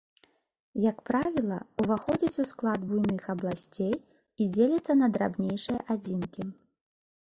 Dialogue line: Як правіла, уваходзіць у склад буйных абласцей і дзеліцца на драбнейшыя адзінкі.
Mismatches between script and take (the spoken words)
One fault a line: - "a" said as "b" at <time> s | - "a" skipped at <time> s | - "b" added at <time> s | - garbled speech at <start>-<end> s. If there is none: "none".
none